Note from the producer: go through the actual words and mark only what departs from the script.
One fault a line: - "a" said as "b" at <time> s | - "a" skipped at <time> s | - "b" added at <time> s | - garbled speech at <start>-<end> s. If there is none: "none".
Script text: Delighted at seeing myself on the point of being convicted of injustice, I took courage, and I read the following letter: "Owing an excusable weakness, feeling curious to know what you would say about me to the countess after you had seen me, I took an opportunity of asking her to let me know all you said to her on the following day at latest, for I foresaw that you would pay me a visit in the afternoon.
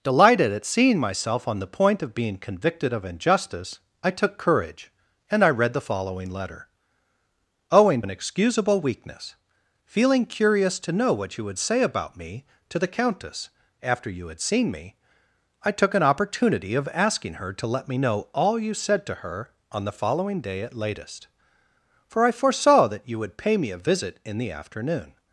none